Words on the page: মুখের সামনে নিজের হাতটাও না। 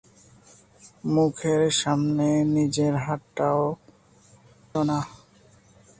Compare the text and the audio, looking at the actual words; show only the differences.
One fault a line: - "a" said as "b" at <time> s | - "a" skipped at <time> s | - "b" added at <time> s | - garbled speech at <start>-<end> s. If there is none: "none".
none